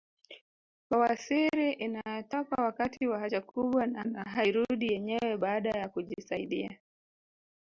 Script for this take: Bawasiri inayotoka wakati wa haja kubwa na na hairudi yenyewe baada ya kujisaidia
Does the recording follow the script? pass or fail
pass